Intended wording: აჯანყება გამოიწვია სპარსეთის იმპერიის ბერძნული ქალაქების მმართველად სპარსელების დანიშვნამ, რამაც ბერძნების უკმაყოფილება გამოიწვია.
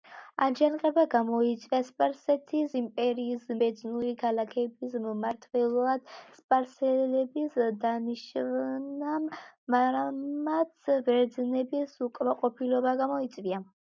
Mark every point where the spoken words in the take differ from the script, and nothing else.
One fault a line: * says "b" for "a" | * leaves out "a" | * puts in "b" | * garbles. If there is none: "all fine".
all fine